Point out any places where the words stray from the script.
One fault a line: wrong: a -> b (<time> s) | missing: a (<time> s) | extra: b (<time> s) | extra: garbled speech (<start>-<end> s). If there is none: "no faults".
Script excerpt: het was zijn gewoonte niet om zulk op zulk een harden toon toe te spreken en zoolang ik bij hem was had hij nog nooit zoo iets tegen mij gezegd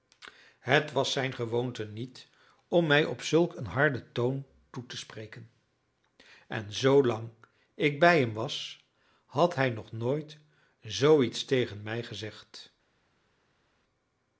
wrong: zulk -> mij (2.9 s)